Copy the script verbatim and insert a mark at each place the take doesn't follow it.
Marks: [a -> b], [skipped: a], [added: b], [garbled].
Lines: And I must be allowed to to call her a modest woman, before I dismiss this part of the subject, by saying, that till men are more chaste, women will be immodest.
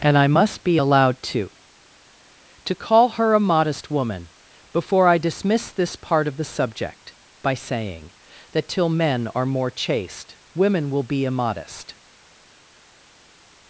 And I must be allowed to to call her a modest woman, before I dismiss this part of the subject, by saying, that till men are more chaste, women will be immodest.